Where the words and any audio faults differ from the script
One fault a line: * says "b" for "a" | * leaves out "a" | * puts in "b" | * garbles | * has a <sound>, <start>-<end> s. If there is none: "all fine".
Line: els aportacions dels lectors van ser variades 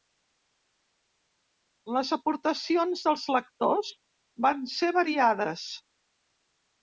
* says "les" for "els"